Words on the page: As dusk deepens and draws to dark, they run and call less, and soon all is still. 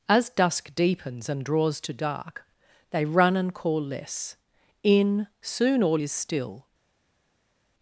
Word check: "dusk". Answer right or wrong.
right